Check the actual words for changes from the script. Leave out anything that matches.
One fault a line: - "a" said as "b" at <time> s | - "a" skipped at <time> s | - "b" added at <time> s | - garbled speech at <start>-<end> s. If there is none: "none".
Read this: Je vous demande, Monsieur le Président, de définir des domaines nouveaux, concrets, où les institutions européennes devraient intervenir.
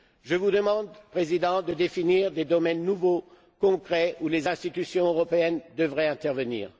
none